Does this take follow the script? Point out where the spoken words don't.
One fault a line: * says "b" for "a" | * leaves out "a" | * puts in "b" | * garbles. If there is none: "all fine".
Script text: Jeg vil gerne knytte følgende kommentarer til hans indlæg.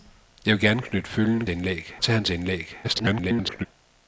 * says "indlæg" for "kommentarer"
* garbles